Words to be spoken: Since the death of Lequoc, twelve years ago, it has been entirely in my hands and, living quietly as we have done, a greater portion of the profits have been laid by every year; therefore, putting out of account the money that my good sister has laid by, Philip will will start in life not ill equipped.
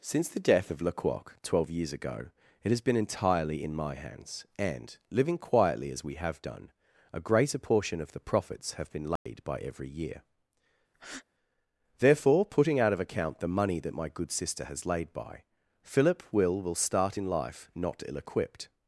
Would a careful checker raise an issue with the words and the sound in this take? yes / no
yes